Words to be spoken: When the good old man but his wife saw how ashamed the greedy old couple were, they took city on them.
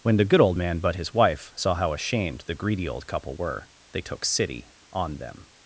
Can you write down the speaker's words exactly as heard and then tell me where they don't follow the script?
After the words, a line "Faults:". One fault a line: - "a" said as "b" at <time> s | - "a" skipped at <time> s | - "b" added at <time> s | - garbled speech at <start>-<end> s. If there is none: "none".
When the good old man but his wife saw how ashamed the greedy old couple were, they took city on them.
Faults:
none